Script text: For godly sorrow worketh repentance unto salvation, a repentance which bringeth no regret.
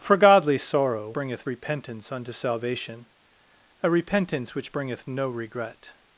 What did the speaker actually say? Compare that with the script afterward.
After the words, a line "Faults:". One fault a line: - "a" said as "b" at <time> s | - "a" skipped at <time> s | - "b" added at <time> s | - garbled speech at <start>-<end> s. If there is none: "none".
For godly sorrow bringeth repentance unto salvation, a repentance which bringeth no regret.
Faults:
- "worketh" said as "bringeth" at 1.1 s